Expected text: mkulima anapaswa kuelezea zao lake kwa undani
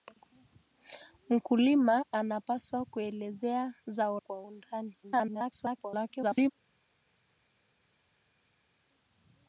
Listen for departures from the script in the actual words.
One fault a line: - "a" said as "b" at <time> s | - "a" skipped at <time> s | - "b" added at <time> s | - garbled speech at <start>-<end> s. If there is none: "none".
- "lake" skipped at 4.2 s
- garbled speech at 5.0-6.5 s